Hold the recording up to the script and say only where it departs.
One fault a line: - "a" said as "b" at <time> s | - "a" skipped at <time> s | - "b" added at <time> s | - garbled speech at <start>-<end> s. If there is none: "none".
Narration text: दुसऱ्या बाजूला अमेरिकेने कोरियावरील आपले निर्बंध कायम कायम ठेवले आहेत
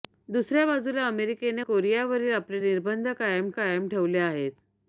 none